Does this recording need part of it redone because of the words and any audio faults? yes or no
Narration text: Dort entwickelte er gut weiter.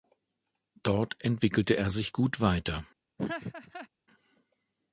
yes